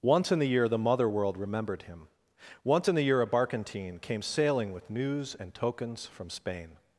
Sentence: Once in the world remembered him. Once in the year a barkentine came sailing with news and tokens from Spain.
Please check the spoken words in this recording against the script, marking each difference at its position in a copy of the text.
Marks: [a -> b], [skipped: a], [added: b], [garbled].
Once in the [added: year the mother] world remembered him. Once in the year a barkentine came sailing with news and tokens from Spain.